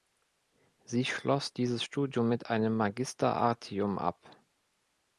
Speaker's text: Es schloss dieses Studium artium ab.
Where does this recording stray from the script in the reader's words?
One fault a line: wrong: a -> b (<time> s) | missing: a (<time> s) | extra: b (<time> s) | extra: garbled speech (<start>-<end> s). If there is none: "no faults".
wrong: Es -> Sie (0.8 s)
extra: mit einem Magister (2.3 s)